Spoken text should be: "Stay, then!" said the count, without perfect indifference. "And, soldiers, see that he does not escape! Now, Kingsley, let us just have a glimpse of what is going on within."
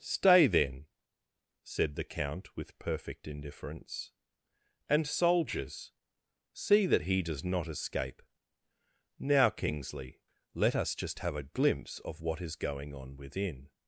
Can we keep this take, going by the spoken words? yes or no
no